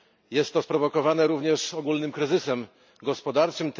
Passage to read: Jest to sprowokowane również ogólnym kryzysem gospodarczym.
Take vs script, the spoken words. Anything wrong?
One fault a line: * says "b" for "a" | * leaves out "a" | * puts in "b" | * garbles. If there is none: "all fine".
all fine